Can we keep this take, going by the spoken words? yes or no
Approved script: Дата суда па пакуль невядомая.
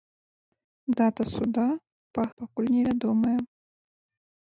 yes